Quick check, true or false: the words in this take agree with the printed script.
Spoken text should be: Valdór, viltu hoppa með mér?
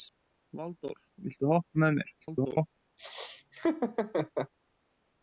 false